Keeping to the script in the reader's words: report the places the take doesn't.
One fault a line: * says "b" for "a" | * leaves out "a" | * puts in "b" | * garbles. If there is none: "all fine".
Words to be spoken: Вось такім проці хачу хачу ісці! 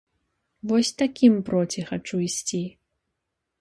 * leaves out "хачу"